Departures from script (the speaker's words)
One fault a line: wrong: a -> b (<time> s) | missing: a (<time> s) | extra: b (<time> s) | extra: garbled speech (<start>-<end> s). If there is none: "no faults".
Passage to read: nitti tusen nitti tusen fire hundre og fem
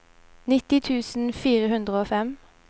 missing: nitti tusen (1.3 s)